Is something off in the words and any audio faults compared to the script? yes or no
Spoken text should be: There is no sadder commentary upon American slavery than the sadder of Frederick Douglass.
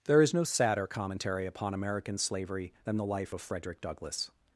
yes